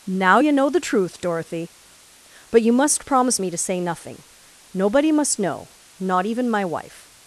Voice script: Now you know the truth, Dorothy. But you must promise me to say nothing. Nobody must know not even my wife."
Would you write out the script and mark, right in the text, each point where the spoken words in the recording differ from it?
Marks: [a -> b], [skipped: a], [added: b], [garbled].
Now you know the truth, Dorothy. But you must promise me to say nothing. Nobody must know not even my wife."